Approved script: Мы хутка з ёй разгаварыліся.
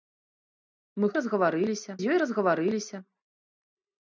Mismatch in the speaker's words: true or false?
true